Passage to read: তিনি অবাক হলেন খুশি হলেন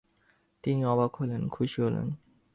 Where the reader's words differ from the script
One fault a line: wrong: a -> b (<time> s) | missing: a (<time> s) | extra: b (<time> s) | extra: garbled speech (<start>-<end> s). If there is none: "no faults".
no faults